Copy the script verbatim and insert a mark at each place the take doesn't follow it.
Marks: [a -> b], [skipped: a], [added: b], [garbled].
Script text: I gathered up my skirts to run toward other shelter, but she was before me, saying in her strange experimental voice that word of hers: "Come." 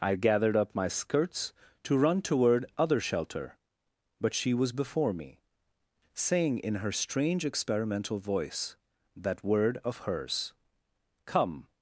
I gathered up my skirts to run toward other shelter, but she was before me, saying in her strange experimental voice that word of hers: "Come."